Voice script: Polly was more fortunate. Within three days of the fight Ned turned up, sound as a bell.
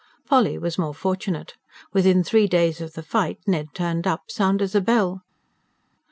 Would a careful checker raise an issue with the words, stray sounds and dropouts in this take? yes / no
no